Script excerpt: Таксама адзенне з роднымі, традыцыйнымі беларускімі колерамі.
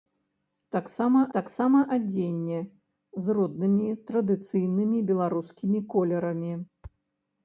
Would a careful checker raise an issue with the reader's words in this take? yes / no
yes